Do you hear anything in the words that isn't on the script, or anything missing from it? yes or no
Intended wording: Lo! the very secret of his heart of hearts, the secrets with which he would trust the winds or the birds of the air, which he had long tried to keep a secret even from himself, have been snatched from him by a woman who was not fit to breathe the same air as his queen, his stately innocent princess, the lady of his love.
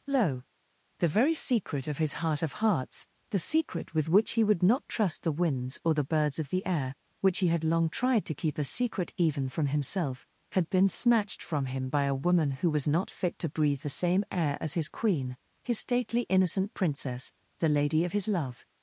yes